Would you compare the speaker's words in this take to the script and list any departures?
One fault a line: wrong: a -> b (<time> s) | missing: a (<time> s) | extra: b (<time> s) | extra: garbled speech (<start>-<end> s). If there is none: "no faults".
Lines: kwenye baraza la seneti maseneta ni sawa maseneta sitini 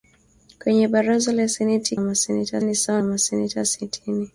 no faults